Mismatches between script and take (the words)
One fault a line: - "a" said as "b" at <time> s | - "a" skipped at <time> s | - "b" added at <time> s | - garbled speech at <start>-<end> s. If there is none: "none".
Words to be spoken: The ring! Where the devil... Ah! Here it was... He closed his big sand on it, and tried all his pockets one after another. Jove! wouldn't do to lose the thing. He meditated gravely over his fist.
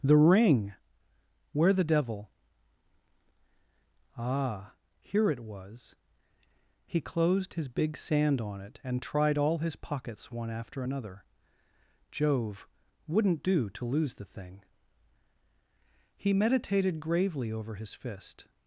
none